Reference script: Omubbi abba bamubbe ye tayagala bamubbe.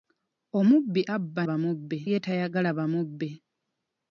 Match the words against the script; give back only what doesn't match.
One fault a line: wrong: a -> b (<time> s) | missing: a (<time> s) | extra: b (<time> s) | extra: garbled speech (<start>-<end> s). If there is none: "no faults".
no faults